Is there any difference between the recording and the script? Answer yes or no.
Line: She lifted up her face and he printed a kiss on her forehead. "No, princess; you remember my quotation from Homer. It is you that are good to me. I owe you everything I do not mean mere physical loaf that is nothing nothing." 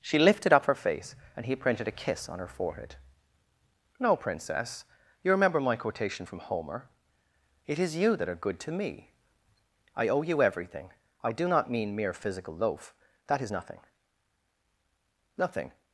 no